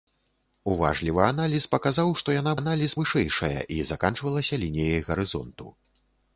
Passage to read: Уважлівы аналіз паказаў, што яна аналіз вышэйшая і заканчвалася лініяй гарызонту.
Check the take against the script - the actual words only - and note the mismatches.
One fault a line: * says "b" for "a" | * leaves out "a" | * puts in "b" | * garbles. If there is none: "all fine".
all fine